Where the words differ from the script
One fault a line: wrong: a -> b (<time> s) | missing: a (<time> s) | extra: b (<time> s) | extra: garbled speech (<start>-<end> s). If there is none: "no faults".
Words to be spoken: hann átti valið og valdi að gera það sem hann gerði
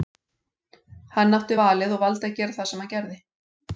no faults